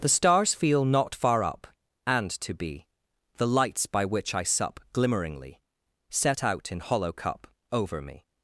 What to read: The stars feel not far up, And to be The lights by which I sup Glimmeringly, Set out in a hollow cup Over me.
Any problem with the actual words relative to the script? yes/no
yes